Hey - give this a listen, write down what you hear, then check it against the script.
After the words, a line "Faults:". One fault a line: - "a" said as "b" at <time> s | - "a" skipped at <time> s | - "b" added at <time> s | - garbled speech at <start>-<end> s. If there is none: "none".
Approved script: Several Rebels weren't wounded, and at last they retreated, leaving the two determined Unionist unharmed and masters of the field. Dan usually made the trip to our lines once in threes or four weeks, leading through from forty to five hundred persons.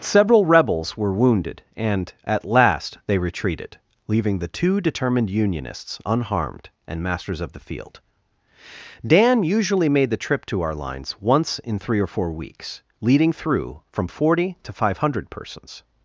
Several Rebels were wounded, and at last they retreated, leaving the two determined Unionists unharmed and masters of the field. Dan usually made the trip to our lines once in three or four weeks, leading through from forty to five hundred persons.
Faults:
- "weren't" said as "were" at 1.0 s
- "Unionist" said as "Unionists" at 5.3 s
- "threes" said as "three" at 11.8 s